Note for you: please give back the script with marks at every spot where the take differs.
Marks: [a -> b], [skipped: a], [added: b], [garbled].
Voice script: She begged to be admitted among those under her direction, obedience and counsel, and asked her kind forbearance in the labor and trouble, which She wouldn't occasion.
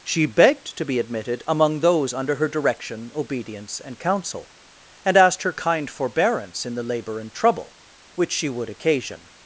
She begged to be admitted among those under her direction, obedience and counsel, and asked her kind forbearance in the labor and trouble, which She [wouldn't -> would] occasion.